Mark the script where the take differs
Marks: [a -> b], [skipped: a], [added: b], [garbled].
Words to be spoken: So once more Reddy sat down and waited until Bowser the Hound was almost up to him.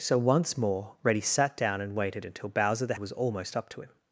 So once more Reddy sat down and waited until Bowser the [skipped: Hound] was almost up to him.